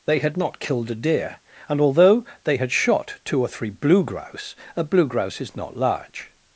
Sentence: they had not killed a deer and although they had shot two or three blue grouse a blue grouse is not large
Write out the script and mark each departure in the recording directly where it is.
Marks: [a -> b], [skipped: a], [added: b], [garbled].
they had not killed a deer and although they had shot two or three blue grouse a blue grouse is not large